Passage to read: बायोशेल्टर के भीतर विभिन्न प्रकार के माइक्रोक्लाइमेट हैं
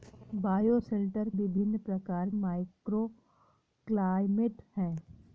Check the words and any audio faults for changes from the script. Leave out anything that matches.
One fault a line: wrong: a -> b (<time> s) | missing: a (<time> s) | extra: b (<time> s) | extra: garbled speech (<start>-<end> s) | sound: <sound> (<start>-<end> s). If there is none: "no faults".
missing: के भीतर (1.3 s)
missing: के (2.3 s)